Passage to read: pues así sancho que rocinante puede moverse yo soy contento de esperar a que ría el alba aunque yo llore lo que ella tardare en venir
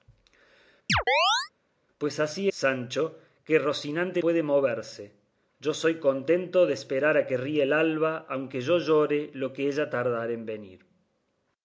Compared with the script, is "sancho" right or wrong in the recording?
right